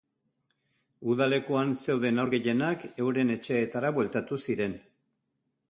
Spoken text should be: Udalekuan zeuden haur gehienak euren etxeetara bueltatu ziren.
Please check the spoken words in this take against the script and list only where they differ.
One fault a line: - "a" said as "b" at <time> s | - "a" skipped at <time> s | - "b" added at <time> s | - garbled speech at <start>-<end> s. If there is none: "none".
none